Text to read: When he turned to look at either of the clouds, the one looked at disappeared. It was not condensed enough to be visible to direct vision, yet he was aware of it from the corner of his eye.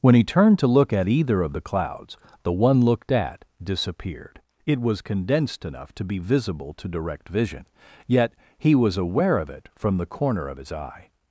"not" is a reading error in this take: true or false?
true